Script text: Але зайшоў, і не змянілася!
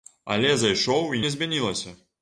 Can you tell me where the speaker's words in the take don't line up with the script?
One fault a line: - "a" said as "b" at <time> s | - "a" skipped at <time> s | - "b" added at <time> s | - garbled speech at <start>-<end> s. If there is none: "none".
none